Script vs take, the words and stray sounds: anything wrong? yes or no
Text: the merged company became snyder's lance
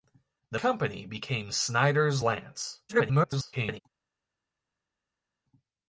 yes